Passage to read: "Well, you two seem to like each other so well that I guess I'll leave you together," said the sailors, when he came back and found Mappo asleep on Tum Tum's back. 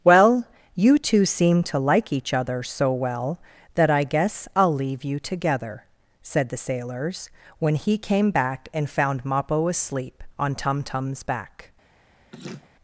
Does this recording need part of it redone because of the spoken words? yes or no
no